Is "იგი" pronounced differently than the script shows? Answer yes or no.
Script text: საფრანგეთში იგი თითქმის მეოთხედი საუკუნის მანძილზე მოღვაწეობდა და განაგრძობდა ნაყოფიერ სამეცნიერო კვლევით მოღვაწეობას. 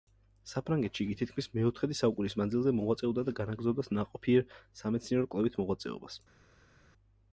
no